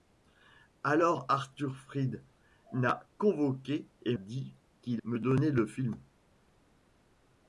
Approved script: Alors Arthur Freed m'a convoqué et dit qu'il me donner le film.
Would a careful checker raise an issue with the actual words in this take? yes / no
no